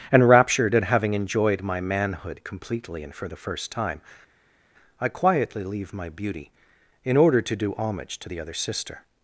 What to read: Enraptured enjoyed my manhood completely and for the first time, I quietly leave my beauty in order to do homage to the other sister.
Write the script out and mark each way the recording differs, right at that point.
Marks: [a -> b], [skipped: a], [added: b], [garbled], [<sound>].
Enraptured [added: at having] enjoyed my manhood completely and for the first time, I quietly leave my beauty in order to do homage to the other sister.